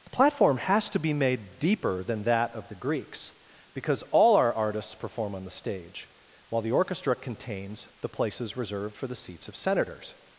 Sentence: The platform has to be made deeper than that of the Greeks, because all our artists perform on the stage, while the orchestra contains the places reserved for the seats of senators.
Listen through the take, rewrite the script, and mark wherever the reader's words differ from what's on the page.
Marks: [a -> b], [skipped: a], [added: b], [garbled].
The platform has to be made deeper than that of the Greeks, because all our artists perform on the stage, while the orchestra contains the places reserved for the seats of senators.